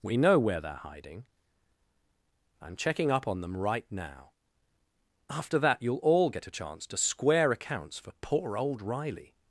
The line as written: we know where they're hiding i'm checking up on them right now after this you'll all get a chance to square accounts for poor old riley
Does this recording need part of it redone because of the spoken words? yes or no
yes